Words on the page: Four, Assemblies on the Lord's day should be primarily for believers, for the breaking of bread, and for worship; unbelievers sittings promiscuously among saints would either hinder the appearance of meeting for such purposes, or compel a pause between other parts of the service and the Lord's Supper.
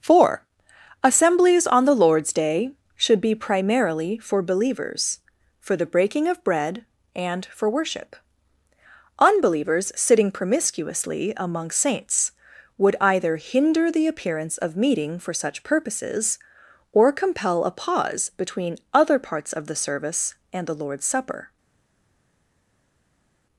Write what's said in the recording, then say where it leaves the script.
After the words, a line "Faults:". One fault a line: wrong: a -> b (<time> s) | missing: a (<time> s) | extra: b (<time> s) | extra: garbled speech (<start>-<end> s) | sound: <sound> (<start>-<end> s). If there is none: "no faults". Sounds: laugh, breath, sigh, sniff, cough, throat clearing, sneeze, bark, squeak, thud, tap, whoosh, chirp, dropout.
Four, Assemblies on the Lord's day should be primarily for believers, for the breaking of bread, and for worship; unbelievers sitting promiscuously among saints would either hinder the appearance of meeting for such purposes, or compel a pause between other parts of the service and the Lord's Supper.
Faults:
wrong: sittings -> sitting (9.9 s)